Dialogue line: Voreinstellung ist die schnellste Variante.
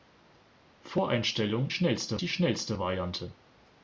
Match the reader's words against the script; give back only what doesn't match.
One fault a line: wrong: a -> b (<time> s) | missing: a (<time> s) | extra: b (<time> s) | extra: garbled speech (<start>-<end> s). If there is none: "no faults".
wrong: ist -> schnellste (1.7 s)